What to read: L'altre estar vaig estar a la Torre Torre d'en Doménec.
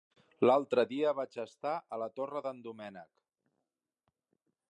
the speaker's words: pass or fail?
fail